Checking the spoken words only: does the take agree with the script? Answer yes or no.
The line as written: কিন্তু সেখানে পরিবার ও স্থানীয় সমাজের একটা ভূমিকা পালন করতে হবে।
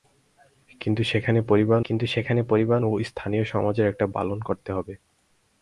no